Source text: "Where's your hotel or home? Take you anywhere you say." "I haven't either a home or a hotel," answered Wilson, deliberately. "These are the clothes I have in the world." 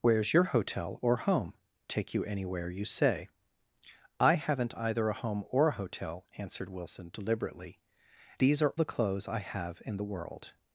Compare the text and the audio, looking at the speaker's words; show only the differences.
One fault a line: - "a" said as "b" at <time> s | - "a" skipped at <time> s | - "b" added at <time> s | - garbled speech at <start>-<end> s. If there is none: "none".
none